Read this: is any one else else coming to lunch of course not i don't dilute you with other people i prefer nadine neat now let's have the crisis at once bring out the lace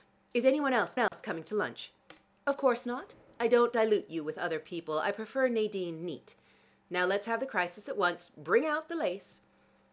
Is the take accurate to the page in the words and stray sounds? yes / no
no